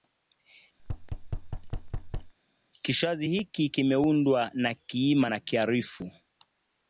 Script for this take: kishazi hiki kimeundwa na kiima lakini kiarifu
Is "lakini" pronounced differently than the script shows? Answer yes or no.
yes